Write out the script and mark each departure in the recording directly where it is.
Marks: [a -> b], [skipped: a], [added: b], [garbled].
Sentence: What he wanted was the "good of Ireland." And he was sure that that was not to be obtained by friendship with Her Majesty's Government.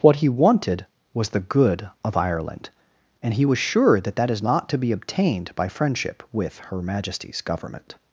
What he wanted was the "good of Ireland." And he was sure that that [was -> is] not to be obtained by friendship with Her Majesty's Government.